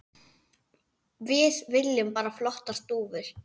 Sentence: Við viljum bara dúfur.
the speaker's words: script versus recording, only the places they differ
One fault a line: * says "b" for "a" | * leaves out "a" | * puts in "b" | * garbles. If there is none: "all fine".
* puts in "flottar"